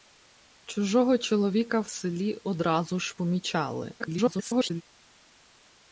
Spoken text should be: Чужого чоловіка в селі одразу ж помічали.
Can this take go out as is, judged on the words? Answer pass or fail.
fail